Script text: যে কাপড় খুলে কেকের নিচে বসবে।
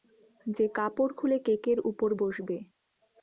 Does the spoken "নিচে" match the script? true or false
false